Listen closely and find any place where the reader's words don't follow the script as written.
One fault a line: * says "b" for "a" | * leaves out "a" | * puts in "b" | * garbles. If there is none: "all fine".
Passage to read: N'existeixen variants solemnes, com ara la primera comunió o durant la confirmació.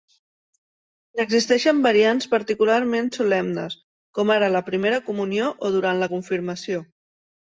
* puts in "particularment"